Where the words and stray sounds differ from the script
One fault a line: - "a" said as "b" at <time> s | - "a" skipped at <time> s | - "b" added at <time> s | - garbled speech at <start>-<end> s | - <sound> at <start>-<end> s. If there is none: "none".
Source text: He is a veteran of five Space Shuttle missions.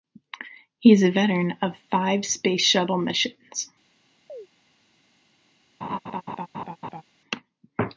- chirp at 4.3-4.5 s
- laugh at 5.8-7.0 s